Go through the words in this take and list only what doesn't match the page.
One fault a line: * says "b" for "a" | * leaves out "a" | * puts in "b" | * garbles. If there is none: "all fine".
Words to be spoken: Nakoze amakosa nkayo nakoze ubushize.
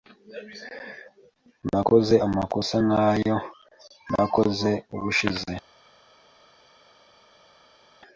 all fine